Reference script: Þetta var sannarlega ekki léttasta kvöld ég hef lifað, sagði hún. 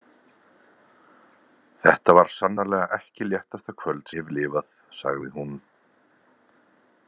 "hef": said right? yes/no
yes